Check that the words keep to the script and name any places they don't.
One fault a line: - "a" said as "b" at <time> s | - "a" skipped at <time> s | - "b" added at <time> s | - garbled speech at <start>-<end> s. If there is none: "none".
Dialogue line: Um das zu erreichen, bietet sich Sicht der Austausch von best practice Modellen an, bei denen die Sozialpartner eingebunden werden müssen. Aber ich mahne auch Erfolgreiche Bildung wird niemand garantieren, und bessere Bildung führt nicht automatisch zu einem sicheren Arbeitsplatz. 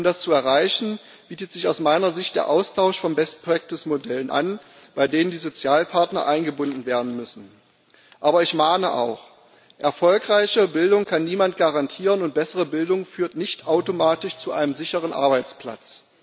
- "aus meiner" added at 1.7 s
- "wird" said as "kann" at 11.0 s